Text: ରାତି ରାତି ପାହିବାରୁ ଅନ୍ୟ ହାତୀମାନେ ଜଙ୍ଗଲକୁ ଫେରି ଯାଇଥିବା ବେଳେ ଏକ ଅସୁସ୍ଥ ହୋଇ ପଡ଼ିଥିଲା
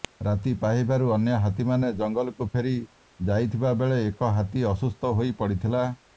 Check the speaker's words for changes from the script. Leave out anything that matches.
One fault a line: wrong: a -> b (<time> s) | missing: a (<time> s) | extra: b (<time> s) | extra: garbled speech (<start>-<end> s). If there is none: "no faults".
missing: ରାତି (0.5 s)
extra: ହାତୀ (4.3 s)